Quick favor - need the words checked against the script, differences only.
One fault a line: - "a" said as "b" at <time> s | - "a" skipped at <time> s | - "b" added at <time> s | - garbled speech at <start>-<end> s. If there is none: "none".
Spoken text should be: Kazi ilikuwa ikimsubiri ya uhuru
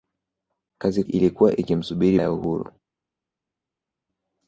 none